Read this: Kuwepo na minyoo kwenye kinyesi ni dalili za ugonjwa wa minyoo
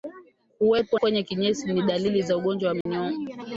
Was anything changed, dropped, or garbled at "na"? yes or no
yes